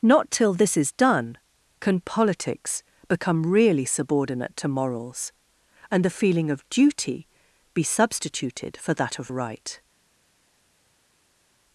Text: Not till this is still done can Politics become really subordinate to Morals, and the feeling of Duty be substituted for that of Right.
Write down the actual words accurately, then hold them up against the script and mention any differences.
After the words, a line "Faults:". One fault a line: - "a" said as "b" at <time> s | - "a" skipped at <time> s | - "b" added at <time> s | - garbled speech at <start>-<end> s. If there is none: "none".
Not till this is done can Politics become really subordinate to Morals, and the feeling of Duty be substituted for that of Right.
Faults:
- "still" skipped at 0.9 s